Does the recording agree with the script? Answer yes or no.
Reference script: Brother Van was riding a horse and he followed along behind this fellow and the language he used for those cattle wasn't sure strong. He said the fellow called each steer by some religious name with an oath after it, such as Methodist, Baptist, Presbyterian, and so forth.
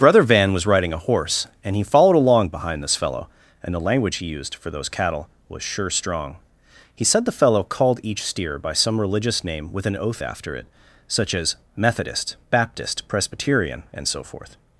no